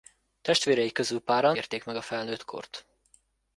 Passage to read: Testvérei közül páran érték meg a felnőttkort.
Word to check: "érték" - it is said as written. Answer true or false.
true